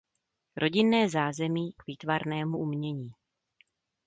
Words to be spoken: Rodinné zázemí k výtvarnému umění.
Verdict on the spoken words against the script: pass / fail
pass